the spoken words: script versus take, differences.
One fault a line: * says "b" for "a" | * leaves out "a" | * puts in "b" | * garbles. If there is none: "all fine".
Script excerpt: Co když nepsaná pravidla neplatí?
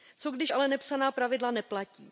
* puts in "ale"